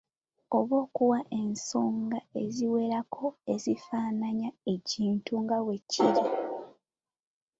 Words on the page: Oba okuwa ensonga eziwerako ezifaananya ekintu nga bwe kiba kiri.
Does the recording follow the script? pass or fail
fail